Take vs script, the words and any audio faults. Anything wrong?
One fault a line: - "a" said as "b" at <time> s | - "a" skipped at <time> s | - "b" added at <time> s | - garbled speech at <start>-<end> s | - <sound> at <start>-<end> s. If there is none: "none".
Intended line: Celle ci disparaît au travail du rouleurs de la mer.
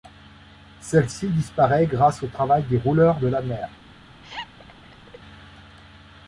- "grâce" added at 1.9 s
- "du" said as "des" at 2.6 s
- laugh at 4.2-5.2 s